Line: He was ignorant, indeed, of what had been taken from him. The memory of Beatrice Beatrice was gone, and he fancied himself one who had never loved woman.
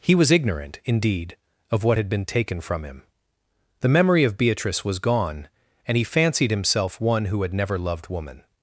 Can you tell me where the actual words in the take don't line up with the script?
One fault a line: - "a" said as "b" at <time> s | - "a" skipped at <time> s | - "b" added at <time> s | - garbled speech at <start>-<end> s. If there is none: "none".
- "Beatrice" skipped at 4.8 s